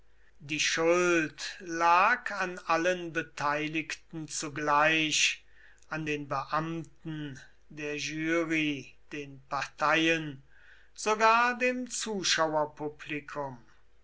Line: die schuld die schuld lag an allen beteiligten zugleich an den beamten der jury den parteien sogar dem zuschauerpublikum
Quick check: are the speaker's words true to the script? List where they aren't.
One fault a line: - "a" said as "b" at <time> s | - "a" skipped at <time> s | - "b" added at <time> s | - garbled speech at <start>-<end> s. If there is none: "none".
- "die schuld" skipped at 1.6 s